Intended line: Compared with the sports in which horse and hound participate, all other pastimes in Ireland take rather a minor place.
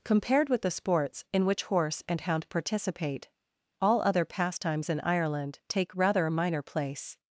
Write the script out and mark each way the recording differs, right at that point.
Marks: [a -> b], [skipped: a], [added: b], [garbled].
Compared with the sports in which horse and hound participate, all other pastimes in Ireland take rather a minor place.